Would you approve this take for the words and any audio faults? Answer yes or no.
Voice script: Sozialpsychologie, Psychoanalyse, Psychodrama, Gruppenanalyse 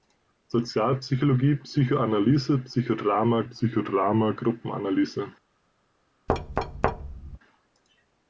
no